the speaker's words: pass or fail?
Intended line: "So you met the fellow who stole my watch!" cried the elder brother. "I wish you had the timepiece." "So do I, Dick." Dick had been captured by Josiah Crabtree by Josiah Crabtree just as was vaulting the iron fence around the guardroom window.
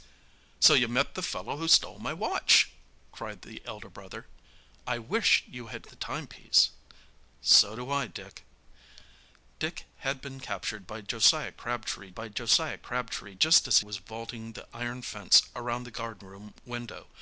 pass